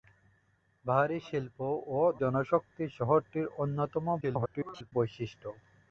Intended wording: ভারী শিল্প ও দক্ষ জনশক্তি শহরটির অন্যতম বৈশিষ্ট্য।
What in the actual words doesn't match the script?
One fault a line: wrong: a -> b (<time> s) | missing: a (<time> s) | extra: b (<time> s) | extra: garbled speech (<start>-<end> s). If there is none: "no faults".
missing: দক্ষ (2.0 s)
extra: garbled speech (4.2-4.9 s)